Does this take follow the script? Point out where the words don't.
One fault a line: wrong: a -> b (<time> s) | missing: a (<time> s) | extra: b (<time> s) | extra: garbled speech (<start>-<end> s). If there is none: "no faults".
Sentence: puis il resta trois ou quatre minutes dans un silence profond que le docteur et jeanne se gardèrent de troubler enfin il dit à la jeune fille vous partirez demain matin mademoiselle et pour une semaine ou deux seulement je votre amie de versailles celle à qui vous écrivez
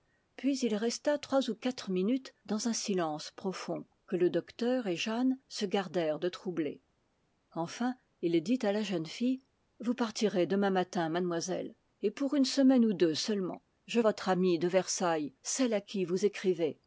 no faults